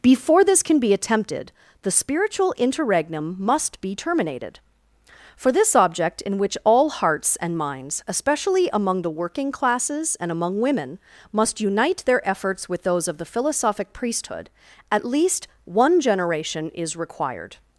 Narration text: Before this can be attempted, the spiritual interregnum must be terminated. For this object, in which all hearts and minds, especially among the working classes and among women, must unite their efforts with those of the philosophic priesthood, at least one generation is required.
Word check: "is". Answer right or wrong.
right